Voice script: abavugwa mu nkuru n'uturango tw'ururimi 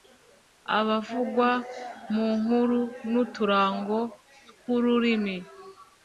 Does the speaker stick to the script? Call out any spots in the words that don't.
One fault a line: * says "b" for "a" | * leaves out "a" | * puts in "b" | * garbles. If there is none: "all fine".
all fine